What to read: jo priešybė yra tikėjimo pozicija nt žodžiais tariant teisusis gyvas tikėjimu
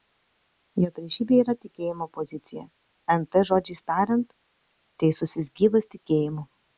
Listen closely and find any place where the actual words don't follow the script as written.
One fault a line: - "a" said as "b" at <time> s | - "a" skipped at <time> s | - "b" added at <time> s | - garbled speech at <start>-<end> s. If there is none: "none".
none